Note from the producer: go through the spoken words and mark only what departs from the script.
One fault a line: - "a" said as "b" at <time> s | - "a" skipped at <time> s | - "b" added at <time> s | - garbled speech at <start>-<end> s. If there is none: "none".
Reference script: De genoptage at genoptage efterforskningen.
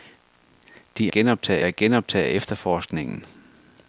none